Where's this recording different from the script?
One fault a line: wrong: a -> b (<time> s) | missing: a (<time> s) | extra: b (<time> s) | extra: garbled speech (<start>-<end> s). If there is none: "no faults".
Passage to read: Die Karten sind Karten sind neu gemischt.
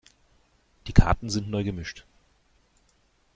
missing: Karten sind (1.5 s)